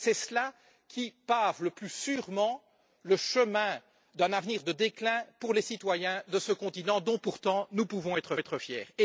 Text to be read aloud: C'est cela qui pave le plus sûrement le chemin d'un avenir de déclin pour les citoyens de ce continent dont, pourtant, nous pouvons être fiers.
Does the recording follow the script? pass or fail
fail